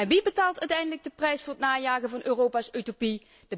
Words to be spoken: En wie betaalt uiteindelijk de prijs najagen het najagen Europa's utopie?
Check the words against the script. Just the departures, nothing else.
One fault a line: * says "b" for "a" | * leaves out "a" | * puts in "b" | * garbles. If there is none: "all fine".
* says "voor" for "najagen"
* puts in "van"